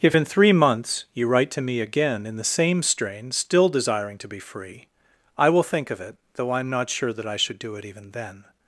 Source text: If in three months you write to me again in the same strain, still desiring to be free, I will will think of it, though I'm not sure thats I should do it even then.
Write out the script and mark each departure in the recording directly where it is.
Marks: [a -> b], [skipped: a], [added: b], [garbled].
If in three months you write to me again in the same strain, still desiring to be free, I will [skipped: will] think of it, though I'm not sure [thats -> that] I should do it even then.